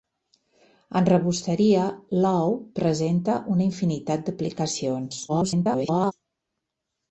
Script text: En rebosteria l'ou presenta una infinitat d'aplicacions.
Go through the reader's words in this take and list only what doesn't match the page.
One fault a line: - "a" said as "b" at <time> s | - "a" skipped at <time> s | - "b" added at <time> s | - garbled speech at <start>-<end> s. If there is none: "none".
- garbled speech at 5.3-6.1 s